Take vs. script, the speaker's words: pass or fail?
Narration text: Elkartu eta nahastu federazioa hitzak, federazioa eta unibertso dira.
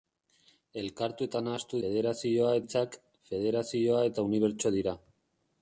pass